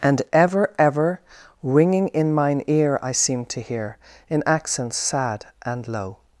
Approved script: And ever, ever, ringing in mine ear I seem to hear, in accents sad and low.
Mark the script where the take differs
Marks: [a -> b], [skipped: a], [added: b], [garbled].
And ever, ever, ringing in mine ear I seem to hear, in accents sad and low.